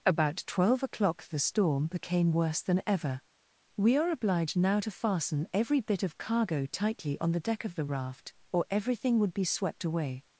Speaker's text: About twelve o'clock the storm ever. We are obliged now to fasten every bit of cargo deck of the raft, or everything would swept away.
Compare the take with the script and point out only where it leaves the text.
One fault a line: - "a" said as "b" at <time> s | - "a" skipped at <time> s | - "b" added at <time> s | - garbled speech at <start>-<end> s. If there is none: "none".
- "became worse than" added at 1.9 s
- "tightly on the" added at 6.7 s
- "be" added at 9.3 s